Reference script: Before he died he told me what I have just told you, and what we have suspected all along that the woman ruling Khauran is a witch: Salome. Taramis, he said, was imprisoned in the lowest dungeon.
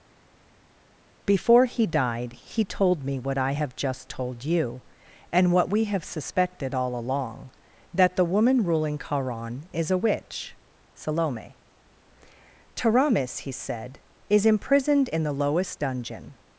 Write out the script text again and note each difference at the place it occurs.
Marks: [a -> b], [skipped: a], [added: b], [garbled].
Before he died he told me what I have just told you, and what we have suspected all along that the woman ruling Khauran is a witch: Salome. Taramis, he said, [was -> is] imprisoned in the lowest dungeon.